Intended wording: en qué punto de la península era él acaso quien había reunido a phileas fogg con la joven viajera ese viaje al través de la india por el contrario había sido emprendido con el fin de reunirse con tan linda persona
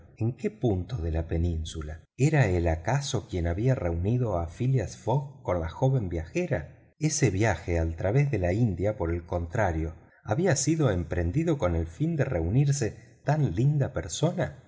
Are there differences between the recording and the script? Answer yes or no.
yes